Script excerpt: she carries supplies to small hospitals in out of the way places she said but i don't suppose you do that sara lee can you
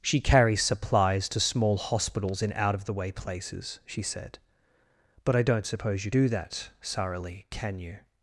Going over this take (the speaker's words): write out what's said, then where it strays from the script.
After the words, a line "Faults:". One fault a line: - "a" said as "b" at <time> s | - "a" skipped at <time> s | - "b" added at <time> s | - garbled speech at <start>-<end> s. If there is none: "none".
she carries supplies to small hospitals in out of the way places she said but i don't suppose you do that sara lee can you
Faults:
none